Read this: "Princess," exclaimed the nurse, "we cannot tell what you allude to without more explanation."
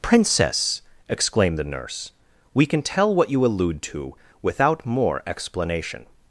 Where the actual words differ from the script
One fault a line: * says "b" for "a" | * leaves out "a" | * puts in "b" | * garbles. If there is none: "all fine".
* says "can" for "cannot"